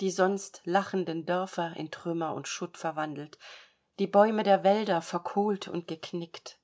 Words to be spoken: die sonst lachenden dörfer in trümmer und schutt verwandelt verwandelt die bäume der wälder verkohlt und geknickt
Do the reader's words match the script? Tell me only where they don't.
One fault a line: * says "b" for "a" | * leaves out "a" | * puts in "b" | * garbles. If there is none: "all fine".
* leaves out "verwandelt"